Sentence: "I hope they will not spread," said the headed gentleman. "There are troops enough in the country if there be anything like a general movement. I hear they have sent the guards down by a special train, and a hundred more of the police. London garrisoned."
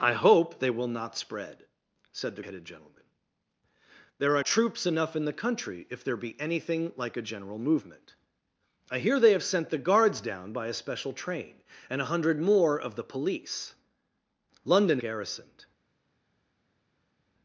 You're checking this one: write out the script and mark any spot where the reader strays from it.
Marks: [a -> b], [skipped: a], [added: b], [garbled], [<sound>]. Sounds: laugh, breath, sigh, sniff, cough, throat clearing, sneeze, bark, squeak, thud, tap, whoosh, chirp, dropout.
"I hope they will not spread," said the headed gentleman. "There are troops enough in the country if there be anything like a general movement. I hear they have sent the guards down by a special train, and a hundred more of the police. London garrisoned."